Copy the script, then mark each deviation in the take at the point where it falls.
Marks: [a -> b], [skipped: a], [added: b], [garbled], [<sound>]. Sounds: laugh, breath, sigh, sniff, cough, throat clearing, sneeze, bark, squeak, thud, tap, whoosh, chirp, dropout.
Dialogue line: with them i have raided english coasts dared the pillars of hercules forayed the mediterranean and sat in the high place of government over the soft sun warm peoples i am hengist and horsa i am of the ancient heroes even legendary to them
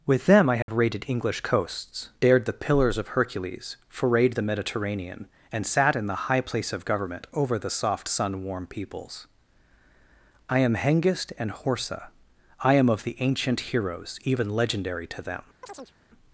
with them i have [dropout] raided english coasts dared the pillars of hercules forayed the mediterranean and sat in the high place of government over the soft sun warm peoples i am hengist and horsa i am of the ancient heroes even legendary to them [chirp]